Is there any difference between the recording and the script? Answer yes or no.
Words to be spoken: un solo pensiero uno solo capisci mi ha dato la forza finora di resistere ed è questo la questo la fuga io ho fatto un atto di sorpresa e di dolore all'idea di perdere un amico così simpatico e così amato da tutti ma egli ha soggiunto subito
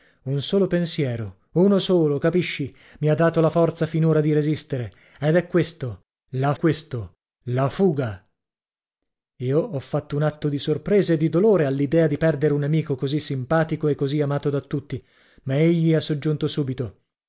no